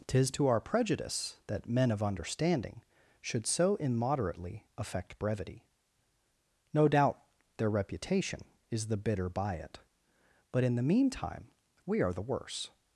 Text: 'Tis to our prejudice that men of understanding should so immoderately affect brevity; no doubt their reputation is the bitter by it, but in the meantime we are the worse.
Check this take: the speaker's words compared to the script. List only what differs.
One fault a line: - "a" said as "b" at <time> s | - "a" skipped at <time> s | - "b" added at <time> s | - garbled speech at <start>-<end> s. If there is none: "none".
none